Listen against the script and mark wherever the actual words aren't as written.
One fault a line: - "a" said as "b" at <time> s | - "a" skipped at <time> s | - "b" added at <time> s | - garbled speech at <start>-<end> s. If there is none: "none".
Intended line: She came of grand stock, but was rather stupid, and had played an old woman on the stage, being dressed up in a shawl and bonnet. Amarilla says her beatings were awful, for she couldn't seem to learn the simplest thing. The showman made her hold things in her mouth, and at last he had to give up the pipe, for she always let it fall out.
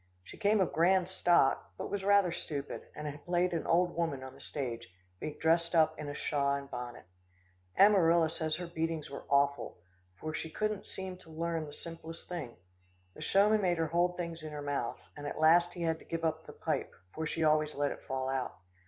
none